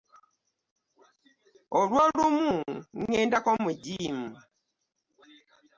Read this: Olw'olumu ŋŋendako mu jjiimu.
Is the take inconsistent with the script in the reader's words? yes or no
no